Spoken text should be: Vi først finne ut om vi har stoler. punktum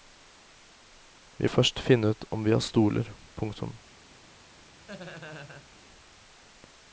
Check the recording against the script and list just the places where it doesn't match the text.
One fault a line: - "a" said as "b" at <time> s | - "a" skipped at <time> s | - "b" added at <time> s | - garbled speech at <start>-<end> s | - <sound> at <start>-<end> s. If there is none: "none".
- laugh at 4.9-5.7 s